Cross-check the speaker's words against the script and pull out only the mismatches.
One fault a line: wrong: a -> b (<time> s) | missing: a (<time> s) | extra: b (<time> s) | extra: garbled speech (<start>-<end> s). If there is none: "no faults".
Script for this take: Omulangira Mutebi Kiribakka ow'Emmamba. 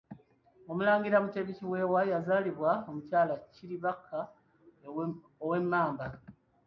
extra: Kiweewa yazaalibwa Omukyala (1.6 s)